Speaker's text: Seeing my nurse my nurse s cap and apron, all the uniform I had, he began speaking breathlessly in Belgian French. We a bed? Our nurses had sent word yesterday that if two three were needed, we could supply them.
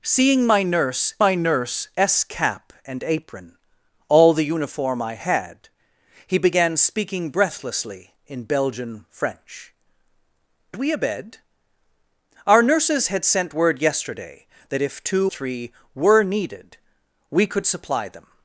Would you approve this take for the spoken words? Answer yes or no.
yes